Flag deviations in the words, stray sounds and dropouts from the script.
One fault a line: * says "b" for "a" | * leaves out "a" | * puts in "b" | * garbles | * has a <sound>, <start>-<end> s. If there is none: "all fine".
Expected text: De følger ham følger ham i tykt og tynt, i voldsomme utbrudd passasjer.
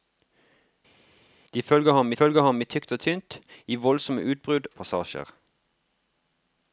all fine